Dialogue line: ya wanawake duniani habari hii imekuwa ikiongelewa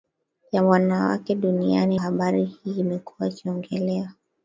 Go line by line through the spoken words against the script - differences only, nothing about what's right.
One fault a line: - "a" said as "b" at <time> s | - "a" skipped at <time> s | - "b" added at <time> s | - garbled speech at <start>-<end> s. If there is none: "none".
none